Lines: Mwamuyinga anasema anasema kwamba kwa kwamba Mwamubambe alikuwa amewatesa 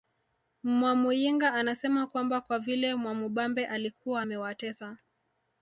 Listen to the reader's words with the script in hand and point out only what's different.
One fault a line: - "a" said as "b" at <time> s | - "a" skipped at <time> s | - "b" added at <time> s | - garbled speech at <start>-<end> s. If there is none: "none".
- "anasema" skipped at 2.1 s
- "kwamba" said as "vile" at 2.6 s